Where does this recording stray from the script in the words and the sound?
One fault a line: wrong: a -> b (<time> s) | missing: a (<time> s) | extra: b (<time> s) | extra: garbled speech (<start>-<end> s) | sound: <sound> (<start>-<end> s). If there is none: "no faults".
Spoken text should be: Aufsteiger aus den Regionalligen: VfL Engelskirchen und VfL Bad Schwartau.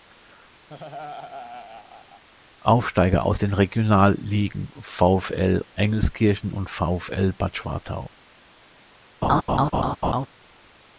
sound: laugh (0.7-2.2 s)
sound: laugh (9.2-10.3 s)